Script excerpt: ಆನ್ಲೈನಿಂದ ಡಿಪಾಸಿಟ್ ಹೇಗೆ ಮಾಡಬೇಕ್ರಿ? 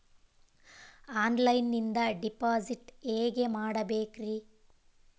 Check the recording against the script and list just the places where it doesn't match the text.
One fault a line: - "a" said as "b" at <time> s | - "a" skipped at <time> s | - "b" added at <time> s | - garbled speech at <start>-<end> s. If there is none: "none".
none